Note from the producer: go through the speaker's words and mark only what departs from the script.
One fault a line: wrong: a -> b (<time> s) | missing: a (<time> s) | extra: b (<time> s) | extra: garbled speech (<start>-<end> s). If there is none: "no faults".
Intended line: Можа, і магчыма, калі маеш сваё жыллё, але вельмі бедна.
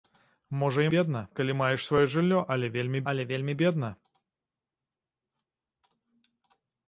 wrong: магчыма -> бедна (1.0 s)
extra: але вельмі (3.1 s)